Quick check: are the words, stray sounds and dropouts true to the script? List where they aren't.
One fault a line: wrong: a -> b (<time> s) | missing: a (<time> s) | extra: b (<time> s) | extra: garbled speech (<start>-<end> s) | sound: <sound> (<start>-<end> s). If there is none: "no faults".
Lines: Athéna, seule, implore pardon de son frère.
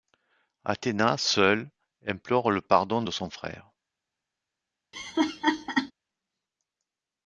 extra: le (2.5 s)
sound: laugh (4.9-5.9 s)